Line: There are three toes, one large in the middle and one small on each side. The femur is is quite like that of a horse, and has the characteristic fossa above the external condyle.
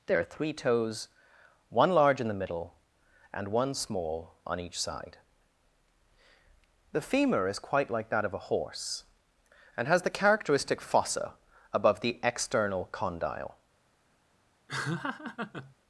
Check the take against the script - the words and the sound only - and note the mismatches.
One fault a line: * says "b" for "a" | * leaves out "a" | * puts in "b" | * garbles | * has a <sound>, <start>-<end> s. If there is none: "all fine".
* leaves out "is"
* has a laugh, 14.7-15.8 s